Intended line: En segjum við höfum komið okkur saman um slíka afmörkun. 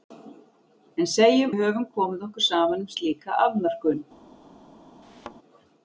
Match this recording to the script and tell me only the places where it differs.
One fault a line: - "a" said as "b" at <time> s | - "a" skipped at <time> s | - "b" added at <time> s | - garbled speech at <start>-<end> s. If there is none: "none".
none